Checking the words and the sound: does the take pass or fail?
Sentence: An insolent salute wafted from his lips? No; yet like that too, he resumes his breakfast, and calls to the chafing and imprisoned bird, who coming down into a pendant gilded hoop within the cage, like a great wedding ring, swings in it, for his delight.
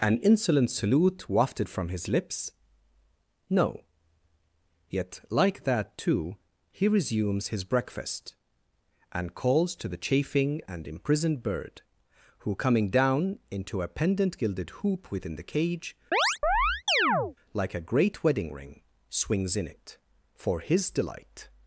fail